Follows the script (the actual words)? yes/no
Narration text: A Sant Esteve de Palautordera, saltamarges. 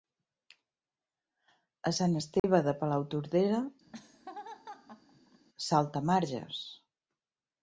yes